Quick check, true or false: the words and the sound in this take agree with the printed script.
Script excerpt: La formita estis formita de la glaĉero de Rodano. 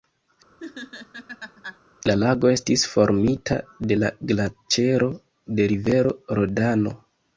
false